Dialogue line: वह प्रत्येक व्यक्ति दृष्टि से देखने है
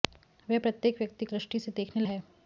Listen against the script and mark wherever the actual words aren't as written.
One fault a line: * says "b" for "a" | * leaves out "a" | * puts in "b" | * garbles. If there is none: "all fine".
all fine